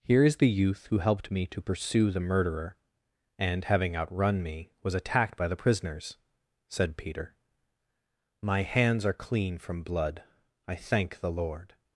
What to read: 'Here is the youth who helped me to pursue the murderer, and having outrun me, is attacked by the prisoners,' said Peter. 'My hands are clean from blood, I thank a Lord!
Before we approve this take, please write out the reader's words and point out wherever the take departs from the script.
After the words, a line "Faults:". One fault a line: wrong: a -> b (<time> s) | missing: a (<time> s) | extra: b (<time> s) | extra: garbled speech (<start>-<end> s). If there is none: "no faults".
'Here is the youth who helped me to pursue the murderer, and having outrun me, was attacked by the prisoners,' said Peter. 'My hands are clean from blood, I thank the Lord!
Faults:
wrong: is -> was (4.8 s)
wrong: a -> the (11.2 s)